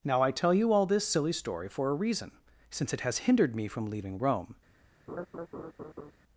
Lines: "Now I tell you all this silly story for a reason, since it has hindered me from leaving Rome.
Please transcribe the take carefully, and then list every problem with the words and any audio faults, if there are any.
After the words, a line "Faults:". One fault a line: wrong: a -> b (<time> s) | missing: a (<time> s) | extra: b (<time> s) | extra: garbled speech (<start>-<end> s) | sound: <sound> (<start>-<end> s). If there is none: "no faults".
"Now I tell you all this silly story for a reason, since it has hindered me from leaving Rome.
Faults:
sound: laugh (5.1-6.1 s)